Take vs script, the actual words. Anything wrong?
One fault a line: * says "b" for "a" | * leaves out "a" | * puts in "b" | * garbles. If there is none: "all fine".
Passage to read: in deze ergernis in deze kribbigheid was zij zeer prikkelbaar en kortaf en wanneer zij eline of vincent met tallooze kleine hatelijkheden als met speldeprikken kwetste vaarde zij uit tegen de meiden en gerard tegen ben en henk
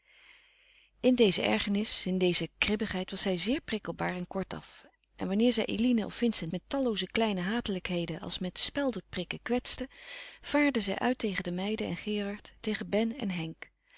all fine